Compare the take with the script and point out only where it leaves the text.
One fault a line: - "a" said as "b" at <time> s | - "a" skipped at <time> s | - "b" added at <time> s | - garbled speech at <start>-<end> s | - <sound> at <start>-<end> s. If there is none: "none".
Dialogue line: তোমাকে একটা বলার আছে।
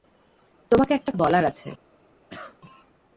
- cough at 2.3-2.6 s